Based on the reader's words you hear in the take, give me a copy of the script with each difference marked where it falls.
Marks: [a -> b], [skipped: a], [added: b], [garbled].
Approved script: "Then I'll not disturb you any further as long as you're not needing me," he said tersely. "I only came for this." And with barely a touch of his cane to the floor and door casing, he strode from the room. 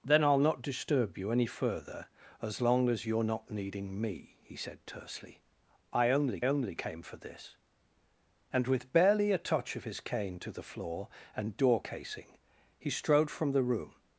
"Then I'll not disturb you any further as long as you're not needing me," he said tersely. "I only [added: only] came for this." And with barely a touch of his cane to the floor and door casing, he strode from the room.